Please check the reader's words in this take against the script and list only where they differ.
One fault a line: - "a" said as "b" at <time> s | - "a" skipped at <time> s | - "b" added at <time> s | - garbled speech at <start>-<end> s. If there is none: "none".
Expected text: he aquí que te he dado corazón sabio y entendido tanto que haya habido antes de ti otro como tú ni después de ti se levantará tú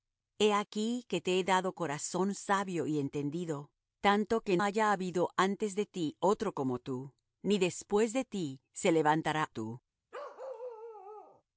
none